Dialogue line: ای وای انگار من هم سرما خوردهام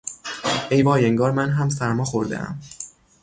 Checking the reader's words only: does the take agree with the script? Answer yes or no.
yes